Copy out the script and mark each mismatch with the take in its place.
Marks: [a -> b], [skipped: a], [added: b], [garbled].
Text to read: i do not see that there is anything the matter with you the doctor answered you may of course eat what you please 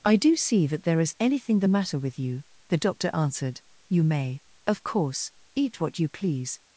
i do [skipped: not] see that there is anything the matter with you the doctor answered you may of course eat what you please